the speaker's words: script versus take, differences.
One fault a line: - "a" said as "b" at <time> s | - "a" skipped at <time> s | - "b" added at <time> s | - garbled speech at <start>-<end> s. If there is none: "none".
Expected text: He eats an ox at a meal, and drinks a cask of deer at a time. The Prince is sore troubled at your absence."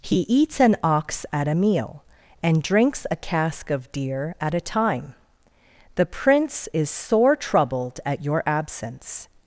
none